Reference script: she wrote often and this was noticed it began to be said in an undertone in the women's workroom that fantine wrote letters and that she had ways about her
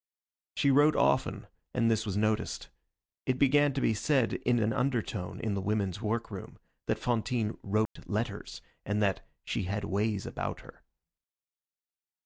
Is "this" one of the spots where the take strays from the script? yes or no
no